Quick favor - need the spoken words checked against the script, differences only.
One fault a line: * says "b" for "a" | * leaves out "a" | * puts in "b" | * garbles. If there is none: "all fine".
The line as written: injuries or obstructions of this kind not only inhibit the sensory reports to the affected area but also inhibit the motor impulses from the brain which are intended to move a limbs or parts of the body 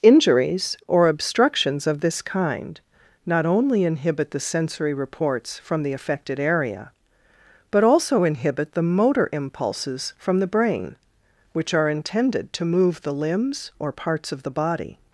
* says "from" for "to"
* says "the" for "a"